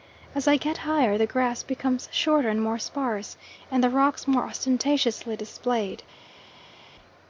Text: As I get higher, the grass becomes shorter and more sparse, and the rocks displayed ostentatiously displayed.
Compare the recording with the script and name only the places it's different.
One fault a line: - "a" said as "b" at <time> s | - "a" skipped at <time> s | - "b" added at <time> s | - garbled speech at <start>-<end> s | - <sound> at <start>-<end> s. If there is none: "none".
- "displayed" said as "more" at 4.3 s